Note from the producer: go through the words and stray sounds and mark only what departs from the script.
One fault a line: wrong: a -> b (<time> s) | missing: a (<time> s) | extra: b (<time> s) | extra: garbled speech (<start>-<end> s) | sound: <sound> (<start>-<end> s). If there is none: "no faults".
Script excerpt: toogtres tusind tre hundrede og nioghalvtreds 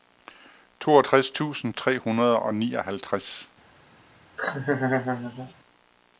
sound: laugh (4.4-5.5 s)